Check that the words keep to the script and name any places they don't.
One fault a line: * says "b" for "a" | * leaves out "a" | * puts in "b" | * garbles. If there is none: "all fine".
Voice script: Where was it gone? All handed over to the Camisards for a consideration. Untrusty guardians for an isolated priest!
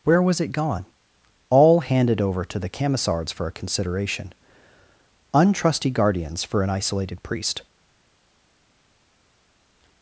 all fine